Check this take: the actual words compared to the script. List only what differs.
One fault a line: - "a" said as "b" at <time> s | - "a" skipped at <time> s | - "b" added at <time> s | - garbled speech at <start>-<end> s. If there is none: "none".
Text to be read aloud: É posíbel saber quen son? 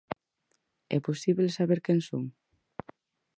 none